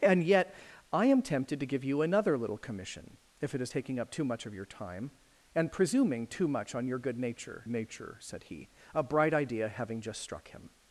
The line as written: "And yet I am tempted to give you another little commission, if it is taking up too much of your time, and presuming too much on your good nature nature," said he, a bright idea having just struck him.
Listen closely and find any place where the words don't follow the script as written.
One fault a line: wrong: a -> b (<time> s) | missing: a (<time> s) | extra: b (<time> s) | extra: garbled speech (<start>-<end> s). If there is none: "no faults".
no faults